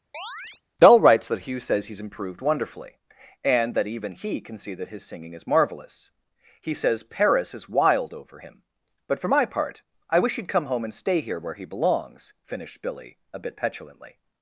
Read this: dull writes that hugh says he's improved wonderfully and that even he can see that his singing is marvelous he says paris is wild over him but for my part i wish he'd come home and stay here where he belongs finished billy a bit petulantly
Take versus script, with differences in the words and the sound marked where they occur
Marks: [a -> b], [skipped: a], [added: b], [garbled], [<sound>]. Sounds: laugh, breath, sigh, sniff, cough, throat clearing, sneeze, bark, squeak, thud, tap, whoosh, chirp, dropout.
[chirp] dull writes that hugh says he's improved wonderfully and that even he can see that his singing is marvelous he says paris is wild over him but for my part i wish he'd come home and stay here where he belongs finished billy a bit petulantly